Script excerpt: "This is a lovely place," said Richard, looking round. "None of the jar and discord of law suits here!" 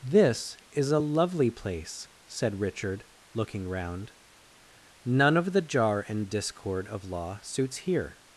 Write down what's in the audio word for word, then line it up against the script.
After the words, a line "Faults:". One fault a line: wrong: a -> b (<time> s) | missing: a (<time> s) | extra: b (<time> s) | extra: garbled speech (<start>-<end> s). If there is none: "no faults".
"This is a lovely place," said Richard, looking round. "None of the jar and discord of law suits here!"
Faults:
no faults